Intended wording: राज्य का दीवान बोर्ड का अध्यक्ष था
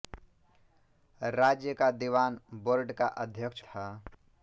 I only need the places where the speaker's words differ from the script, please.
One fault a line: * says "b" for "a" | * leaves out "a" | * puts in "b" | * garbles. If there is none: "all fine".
all fine